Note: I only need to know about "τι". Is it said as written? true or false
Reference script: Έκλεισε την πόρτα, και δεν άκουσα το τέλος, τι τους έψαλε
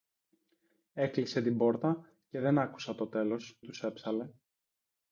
false